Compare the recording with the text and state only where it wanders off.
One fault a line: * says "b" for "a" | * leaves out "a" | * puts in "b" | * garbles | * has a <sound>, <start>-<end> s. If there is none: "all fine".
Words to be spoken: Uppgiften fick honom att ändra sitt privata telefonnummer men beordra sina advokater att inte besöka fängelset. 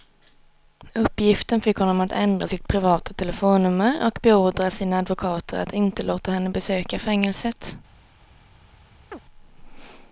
* says "och" for "men"
* puts in "låta henne"
* has a chirp, 9.1-9.2 s